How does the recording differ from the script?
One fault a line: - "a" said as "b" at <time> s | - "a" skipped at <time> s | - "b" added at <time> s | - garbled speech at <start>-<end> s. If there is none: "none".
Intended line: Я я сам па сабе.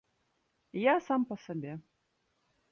- "я" skipped at 0.9 s